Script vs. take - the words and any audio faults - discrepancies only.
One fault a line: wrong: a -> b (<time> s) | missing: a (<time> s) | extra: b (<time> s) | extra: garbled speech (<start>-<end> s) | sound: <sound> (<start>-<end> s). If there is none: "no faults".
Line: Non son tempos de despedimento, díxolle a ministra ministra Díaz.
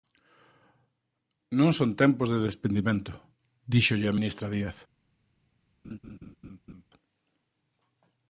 missing: ministra (4.5 s)
sound: laugh (5.8-6.8 s)